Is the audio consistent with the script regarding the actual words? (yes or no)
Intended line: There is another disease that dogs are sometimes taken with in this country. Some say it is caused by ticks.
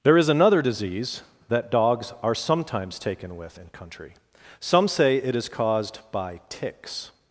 no